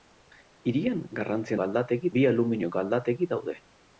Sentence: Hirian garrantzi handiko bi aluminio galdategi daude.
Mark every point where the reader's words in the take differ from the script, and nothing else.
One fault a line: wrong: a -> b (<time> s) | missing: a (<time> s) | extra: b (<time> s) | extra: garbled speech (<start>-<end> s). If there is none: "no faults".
wrong: handiko -> galdategi (1.6 s)